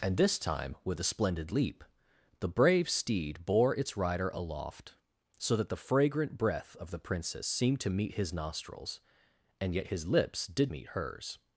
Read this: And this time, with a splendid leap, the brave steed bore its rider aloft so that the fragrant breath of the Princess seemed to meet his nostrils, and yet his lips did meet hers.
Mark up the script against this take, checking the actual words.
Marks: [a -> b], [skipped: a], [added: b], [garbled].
And this time, with a splendid leap, the brave steed bore its rider aloft so that the fragrant breath of the Princess seemed to meet his nostrils, and yet his lips did meet hers.